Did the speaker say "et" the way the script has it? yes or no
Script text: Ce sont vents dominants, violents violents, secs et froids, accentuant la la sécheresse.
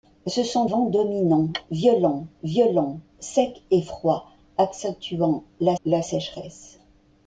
yes